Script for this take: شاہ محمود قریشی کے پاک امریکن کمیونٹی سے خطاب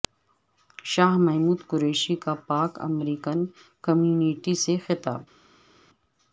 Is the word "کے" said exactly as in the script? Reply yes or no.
no